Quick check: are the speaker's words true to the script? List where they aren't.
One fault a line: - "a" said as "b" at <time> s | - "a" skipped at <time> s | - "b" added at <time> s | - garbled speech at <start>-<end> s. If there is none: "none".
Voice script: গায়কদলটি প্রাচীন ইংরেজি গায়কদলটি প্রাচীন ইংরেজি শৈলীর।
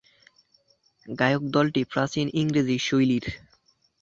- "গায়কদলটি প্রাচীন ইংরেজি" skipped at 2.8 s